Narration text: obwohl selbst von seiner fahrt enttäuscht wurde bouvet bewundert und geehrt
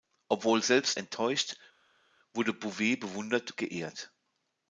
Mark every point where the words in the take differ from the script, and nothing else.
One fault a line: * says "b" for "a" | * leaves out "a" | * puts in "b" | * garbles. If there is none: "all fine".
* leaves out "von seiner fahrt"
* leaves out "und"